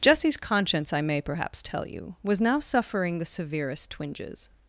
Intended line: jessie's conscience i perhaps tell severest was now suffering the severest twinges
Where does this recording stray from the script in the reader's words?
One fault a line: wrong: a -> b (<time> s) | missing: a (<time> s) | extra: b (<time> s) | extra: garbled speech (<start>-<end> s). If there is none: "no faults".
extra: may (1.0 s)
wrong: severest -> you (1.9 s)